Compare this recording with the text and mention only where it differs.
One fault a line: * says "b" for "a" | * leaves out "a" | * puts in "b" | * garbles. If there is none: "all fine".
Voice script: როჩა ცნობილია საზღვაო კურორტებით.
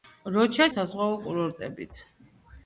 * leaves out "ცნობილია"